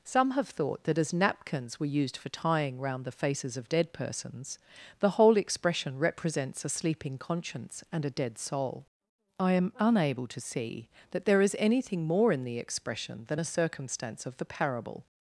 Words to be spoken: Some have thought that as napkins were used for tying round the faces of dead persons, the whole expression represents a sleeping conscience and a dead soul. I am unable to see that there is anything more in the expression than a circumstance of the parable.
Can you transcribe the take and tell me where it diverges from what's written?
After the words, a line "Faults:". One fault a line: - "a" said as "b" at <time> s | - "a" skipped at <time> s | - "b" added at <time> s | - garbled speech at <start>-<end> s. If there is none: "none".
Some have thought that as napkins were used for tying round the faces of dead persons, the whole expression represents a sleeping conscience and a dead soul. I am unable to see that there is anything more in the expression than a circumstance of the parable.
Faults:
none